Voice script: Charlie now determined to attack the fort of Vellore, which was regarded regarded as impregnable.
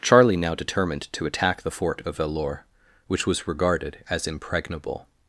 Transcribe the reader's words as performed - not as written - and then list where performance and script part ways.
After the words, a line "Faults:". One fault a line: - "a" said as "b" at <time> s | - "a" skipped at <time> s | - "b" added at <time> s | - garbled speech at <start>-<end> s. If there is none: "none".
Charlie now determined to attack the fort of Vellore, which was regarded as impregnable.
Faults:
- "regarded" skipped at 4.0 s